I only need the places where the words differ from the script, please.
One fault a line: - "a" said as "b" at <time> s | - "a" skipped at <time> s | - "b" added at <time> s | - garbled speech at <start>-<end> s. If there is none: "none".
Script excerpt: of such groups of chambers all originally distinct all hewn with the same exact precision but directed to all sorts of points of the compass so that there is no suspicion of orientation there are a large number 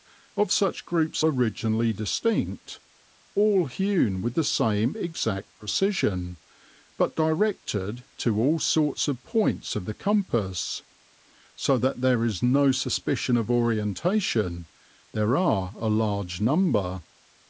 - "of chambers all" skipped at 1.2 s